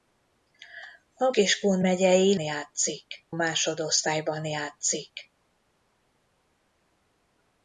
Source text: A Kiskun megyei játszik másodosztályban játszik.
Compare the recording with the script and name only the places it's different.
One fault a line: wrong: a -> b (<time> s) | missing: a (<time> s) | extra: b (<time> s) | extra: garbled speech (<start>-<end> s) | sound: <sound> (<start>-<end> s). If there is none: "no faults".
no faults